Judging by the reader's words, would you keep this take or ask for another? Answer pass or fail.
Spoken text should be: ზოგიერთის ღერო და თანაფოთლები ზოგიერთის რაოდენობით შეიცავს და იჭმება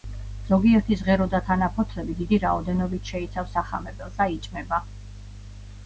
fail